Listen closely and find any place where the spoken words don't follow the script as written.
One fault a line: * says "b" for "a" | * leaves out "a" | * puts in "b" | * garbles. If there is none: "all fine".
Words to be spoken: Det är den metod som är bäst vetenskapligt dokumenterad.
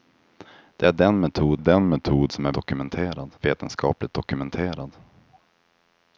* puts in "den metod"
* says "dokumenterad" for "bäst"